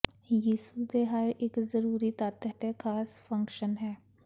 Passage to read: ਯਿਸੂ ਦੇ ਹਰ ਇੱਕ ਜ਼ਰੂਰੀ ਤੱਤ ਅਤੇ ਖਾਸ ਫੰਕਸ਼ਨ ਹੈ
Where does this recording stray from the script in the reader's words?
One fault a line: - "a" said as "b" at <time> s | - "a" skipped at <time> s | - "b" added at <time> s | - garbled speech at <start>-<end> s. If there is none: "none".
none